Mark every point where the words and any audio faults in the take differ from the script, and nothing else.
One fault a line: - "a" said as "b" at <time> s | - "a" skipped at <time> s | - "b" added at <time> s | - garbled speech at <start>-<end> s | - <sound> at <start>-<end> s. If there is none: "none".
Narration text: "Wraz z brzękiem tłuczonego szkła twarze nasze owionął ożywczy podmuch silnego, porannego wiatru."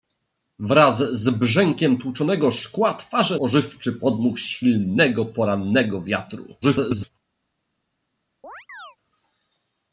- "nasze owionął" skipped at 3.4 s
- garbled speech at 6.6-7.1 s
- chirp at 8.4-9.0 s